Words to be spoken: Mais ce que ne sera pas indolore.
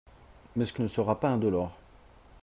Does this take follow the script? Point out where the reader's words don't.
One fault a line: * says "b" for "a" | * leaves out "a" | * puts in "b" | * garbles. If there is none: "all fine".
all fine